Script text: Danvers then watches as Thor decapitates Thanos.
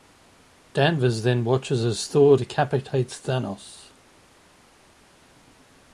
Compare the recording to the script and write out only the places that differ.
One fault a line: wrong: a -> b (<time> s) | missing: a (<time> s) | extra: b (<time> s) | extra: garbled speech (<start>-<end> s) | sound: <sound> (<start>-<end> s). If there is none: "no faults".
no faults